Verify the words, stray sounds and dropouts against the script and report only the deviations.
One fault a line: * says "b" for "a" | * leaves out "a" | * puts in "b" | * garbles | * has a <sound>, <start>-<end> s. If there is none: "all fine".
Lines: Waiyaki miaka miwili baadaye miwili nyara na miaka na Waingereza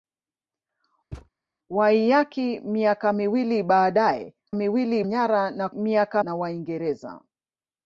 * has a thud, 1.1-1.3 s